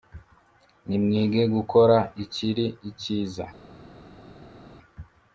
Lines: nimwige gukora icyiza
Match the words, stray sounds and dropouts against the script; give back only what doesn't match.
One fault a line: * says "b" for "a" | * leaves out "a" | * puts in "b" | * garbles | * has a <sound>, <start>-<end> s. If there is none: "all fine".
* puts in "ikiri"